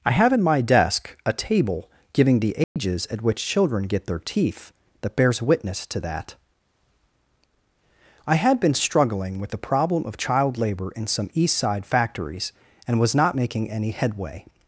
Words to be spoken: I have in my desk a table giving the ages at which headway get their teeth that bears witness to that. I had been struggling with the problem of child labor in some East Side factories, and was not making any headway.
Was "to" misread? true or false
false